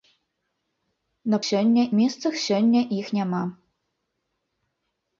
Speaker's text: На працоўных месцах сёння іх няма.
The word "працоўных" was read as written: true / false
false